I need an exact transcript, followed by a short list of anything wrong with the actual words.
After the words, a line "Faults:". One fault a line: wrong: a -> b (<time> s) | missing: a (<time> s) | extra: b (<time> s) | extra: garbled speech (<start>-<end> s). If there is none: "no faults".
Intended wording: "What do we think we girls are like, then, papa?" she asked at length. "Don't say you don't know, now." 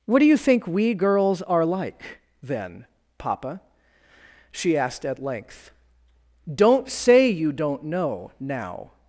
"What do you think we girls are like, then, papa?" she asked at length. "Don't say you don't know, now."
Faults:
wrong: we -> you (0.2 s)